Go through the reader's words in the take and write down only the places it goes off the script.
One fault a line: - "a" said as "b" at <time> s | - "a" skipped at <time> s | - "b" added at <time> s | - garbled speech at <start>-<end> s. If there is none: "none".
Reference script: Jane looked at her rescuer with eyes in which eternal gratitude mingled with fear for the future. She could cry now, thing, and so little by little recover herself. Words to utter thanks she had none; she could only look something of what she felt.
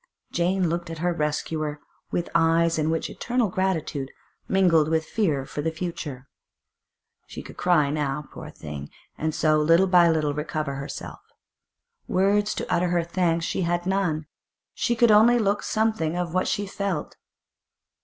- "poor" added at 8.3 s
- "her" added at 12.9 s